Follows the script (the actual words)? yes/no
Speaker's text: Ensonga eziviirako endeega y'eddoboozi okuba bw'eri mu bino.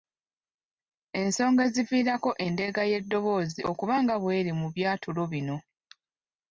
no